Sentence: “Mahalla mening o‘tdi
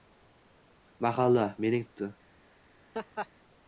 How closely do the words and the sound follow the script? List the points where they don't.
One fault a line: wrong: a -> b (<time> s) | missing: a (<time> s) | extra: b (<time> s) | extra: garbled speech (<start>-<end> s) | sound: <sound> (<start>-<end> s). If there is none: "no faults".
sound: laugh (2.9-3.3 s)